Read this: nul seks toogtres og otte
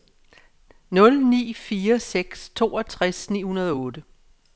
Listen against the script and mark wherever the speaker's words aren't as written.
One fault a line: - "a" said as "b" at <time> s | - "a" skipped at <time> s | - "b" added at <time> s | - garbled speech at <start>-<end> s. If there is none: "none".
- "ni fire" added at 1.3 s
- "ni hundrede" added at 3.3 s